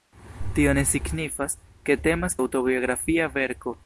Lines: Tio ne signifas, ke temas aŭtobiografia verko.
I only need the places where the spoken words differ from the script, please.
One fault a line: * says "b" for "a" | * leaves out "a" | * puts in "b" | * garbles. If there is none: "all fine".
all fine